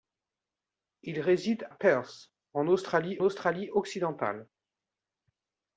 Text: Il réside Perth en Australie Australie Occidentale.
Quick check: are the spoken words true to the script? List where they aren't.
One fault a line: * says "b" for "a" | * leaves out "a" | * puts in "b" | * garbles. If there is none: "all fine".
all fine